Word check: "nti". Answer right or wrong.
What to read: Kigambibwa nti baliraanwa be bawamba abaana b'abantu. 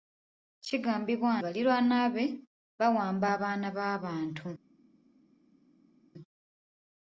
wrong